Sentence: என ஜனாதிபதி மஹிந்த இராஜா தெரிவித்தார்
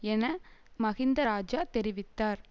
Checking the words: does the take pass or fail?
fail